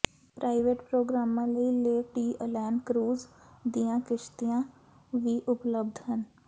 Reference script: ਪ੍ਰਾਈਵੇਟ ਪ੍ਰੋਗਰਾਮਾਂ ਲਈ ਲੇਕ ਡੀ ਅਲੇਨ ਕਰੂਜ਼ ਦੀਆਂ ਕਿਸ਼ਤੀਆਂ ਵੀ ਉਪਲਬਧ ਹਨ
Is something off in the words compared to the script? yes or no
no